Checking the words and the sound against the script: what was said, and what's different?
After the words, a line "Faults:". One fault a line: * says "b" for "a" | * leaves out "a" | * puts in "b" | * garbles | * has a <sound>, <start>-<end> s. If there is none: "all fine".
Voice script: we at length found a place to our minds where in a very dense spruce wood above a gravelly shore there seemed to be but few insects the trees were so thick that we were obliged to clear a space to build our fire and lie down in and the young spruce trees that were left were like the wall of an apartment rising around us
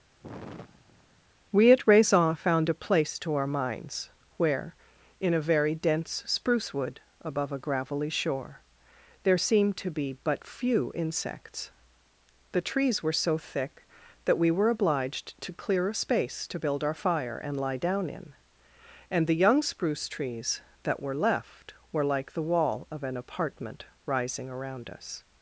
we at raison found a place to our minds where in a very dense spruce wood above a gravelly shore there seemed to be but few insects the trees were so thick that we were obliged to clear a space to build our fire and lie down in and the young spruce trees that were left were like the wall of an apartment rising around us
Faults:
* has a sigh, 0.2-1.2 s
* says "raison" for "length"